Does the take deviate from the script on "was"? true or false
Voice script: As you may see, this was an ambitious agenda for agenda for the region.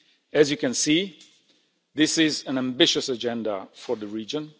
true